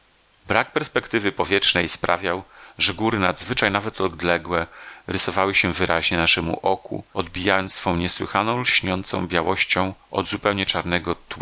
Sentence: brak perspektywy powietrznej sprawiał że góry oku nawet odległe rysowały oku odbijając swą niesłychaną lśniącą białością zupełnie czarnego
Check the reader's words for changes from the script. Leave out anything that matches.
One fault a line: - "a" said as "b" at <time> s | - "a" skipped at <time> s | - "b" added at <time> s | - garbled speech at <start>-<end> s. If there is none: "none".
- "oku" said as "nadzwyczaj" at 3.2 s
- "się wyraźnie naszemu" added at 5.5 s
- "od" added at 10.1 s